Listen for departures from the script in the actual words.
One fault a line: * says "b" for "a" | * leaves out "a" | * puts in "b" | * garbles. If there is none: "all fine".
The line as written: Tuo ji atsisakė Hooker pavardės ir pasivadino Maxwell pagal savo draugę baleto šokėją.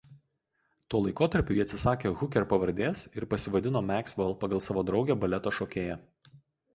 * puts in "laikotarpiu"